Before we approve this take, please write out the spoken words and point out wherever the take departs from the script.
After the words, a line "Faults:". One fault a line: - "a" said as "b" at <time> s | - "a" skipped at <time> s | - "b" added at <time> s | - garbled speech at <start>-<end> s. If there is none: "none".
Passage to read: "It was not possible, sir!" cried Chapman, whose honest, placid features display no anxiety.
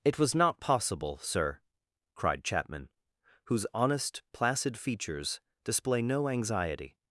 "It was not possible, sir!" cried Chapman, whose honest, placid features display no anxiety.
Faults:
none